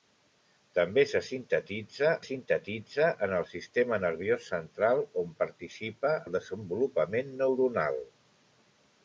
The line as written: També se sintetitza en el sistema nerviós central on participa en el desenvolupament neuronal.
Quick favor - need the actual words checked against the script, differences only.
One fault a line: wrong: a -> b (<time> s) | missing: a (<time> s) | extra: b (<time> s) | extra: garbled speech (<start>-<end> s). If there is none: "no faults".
extra: sintetitza (2.3 s)
missing: en (6.2 s)